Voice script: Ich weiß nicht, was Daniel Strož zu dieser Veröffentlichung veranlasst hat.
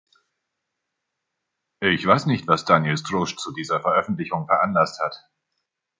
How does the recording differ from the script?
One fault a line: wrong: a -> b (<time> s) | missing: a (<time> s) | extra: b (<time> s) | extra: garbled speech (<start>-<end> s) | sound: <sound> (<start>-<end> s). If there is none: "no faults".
no faults